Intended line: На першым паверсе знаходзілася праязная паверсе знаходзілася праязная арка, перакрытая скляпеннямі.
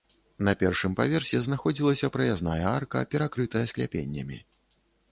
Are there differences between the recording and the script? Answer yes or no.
yes